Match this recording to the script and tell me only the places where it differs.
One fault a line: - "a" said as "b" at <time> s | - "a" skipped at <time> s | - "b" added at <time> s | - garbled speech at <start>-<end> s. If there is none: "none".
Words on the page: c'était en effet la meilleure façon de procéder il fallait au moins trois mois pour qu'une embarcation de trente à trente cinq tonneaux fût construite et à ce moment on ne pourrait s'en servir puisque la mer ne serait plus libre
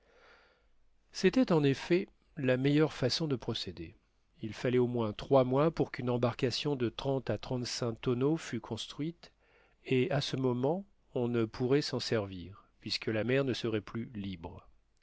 none